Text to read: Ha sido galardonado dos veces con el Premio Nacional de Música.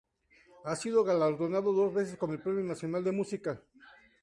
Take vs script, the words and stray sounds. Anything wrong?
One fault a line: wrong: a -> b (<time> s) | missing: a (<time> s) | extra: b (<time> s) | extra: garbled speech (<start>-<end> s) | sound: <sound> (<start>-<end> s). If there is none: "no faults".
no faults